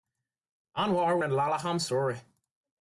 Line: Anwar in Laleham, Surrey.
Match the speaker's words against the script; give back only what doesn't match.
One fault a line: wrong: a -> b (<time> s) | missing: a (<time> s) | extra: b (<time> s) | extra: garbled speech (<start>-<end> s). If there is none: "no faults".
no faults